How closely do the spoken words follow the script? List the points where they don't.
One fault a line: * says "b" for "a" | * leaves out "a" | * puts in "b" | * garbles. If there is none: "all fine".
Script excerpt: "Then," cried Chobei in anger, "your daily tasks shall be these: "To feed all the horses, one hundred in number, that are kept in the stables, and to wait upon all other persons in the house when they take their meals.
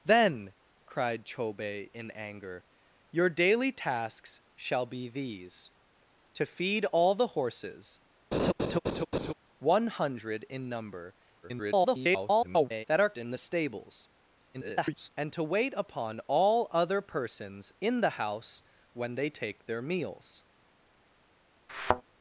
* garbles
* leaves out "kept"
* garbles